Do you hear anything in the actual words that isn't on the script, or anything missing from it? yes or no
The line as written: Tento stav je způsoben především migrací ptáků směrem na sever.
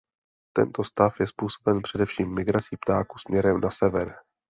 no